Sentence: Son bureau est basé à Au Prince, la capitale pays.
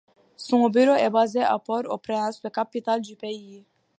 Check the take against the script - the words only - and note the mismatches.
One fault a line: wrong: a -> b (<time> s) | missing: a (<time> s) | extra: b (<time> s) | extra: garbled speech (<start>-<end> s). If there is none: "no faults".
extra: Port (1.6 s)
extra: du (3.0 s)